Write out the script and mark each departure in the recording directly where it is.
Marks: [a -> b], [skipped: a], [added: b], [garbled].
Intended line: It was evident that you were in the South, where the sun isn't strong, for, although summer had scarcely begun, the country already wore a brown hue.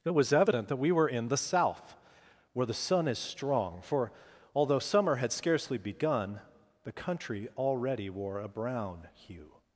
It was evident that [you -> we] were in the South, where the sun [isn't -> is] strong, for, although summer had scarcely begun, the country already wore a brown hue.